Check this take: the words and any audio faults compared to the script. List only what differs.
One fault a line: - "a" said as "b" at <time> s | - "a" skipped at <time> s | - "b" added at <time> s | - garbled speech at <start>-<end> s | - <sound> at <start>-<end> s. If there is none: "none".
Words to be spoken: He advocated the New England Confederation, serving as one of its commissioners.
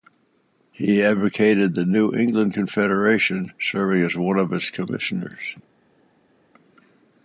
none